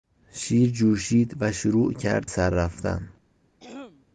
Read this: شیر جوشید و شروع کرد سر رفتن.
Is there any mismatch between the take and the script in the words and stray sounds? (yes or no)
yes